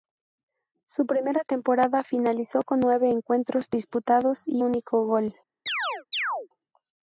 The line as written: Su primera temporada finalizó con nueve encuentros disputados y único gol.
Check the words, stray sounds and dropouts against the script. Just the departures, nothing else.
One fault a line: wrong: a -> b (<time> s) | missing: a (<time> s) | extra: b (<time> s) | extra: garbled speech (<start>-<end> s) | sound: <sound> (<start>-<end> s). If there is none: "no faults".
sound: chirp (5.7-6.5 s)